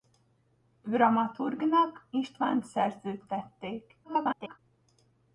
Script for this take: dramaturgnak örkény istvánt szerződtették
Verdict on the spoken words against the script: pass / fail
fail